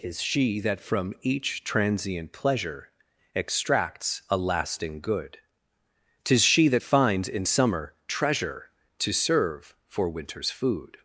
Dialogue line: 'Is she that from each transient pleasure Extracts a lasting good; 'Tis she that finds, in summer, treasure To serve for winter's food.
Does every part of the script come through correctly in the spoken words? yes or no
yes